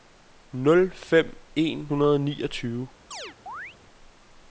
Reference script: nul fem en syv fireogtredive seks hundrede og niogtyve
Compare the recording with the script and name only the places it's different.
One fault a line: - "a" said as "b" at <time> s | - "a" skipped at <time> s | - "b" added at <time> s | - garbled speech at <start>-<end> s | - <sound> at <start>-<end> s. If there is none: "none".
- "syv fireogtredive seks" skipped at 1.9 s
- chirp at 3.1-3.8 s